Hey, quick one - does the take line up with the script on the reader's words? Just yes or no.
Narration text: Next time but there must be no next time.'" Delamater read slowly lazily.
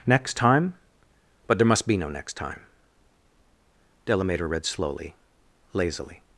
yes